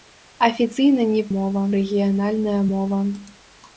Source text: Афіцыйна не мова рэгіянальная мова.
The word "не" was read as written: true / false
true